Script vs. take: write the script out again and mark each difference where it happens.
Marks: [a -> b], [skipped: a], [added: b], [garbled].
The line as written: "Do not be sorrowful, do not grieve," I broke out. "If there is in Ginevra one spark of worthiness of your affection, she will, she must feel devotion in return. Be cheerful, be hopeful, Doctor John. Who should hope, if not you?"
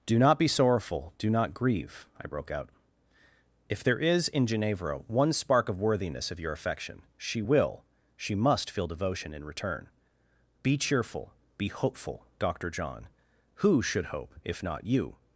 "Do not be sorrowful, do not grieve," I broke out. "If there is in Ginevra one spark of worthiness of your affection, she will, she must feel devotion in return. Be cheerful, be hopeful, Doctor John. Who should hope, if not you?"